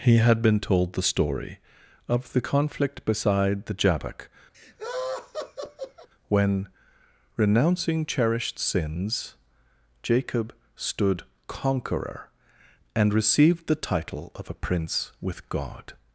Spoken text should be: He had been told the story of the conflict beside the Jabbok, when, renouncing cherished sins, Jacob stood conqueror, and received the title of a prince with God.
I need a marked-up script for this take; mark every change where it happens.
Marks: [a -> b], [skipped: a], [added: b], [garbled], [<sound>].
He had been told the story of the conflict beside the Jabbok, [laugh] when, renouncing cherished sins, Jacob stood conqueror, and received the title of a prince with God.